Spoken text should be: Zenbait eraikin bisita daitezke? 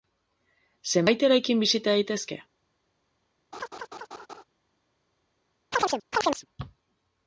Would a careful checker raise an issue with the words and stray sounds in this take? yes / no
yes